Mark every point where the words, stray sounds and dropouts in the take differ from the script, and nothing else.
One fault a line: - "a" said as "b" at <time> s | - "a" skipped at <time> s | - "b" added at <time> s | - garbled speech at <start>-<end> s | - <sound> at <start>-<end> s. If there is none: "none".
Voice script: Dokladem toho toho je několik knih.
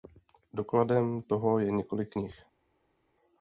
- "toho" skipped at 1.6 s